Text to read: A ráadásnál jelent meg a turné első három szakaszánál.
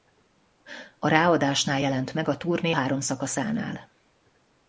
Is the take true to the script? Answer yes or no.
no